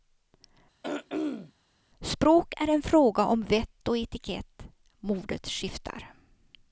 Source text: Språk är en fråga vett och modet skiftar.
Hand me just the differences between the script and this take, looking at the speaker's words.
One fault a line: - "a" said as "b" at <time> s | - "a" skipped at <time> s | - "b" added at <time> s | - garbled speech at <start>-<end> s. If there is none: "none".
- "om" added at 3.3 s
- "etikett" added at 4.0 s